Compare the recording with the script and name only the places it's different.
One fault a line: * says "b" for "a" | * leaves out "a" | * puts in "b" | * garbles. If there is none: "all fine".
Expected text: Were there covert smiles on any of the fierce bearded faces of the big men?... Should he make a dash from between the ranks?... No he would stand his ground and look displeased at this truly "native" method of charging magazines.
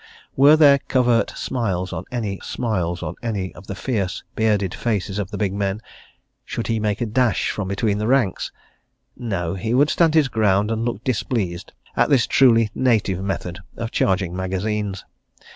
* puts in "smiles on any"